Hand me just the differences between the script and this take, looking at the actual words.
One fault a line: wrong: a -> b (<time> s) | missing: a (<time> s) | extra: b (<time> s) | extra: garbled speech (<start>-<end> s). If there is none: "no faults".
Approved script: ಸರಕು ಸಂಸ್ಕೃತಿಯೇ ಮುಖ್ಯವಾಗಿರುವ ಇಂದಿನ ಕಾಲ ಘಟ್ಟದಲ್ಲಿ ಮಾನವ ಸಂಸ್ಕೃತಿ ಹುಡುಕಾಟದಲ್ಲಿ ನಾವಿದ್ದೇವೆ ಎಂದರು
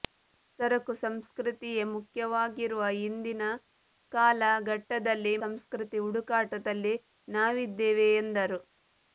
missing: ಮಾನವ (5.3 s)